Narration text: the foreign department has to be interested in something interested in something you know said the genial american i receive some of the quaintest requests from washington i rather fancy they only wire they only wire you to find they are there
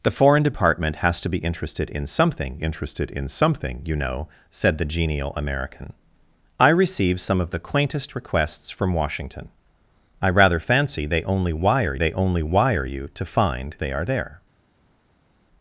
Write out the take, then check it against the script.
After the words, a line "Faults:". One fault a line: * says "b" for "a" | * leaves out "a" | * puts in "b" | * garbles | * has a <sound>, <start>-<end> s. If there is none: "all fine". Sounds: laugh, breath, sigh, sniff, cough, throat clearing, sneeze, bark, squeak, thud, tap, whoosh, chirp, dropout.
the foreign department has to be interested in something interested in something you know said the genial american i receive some of the quaintest requests from washington i rather fancy they only wire they only wire you to find they are there
Faults:
all fine